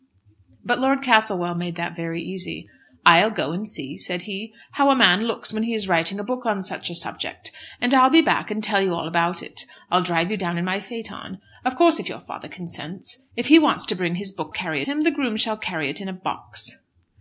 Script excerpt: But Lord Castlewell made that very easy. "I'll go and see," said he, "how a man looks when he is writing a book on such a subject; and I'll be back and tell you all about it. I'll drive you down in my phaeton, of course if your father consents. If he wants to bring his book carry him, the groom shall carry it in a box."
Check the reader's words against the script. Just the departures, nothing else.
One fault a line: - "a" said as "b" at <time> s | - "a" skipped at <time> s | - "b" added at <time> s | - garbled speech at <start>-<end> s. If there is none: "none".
none